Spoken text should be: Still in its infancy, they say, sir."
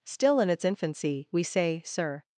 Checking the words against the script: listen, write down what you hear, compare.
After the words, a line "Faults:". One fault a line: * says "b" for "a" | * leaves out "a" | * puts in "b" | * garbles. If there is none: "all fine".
Still in its infancy, we say, sir."
Faults:
* says "we" for "they"